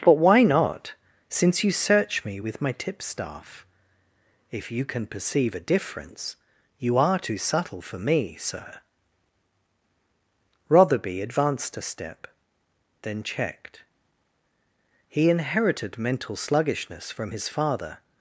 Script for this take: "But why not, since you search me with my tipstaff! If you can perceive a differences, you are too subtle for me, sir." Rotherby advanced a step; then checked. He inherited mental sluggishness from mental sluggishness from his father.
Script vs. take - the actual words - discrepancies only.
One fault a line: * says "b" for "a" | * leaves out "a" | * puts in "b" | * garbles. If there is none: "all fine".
* says "difference" for "differences"
* leaves out "mental sluggishness from"